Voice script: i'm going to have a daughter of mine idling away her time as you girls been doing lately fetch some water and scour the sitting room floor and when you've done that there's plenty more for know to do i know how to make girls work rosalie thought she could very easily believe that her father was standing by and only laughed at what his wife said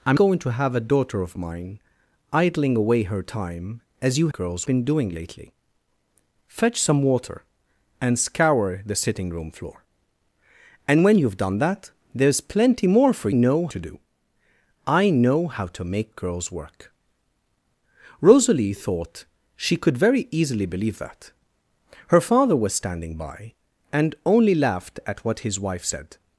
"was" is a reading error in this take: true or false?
false